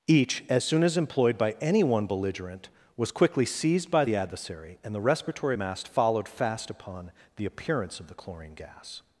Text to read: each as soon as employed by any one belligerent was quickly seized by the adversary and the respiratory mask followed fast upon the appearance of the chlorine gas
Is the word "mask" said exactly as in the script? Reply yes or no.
no